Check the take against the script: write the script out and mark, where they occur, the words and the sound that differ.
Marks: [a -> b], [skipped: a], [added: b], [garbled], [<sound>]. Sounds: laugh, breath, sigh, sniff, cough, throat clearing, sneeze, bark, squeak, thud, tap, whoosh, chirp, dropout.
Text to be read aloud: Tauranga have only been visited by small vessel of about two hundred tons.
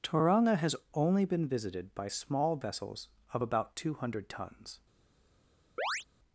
Tauranga [have -> has] only been visited by small [vessel -> vessels] of about two hundred tons. [chirp]